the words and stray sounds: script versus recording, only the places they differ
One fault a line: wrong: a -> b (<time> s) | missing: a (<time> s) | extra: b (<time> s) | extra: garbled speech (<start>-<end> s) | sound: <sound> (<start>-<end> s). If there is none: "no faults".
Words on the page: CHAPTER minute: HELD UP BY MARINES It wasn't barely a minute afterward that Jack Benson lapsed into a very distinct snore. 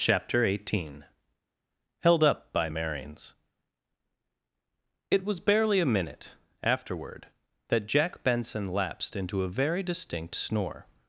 wrong: minute -> eighteen (0.4 s)
wrong: wasn't -> was (5.2 s)